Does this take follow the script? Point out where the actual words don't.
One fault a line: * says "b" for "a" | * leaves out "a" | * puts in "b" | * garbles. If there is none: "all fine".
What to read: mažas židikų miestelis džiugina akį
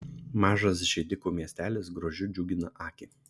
* puts in "grožiu"